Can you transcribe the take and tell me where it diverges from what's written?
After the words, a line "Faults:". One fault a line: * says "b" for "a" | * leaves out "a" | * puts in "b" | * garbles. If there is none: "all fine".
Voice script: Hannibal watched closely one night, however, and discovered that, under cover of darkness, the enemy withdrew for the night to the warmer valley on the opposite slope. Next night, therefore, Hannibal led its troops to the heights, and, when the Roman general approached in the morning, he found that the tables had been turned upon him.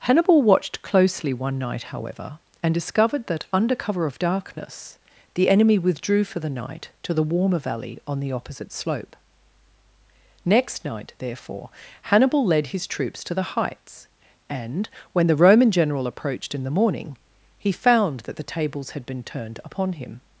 Hannibal watched closely one night, however, and discovered that, under cover of darkness, the enemy withdrew for the night to the warmer valley on the opposite slope. Next night, therefore, Hannibal led his troops to the heights, and, when the Roman general approached in the morning, he found that the tables had been turned upon him.
Faults:
* says "his" for "its"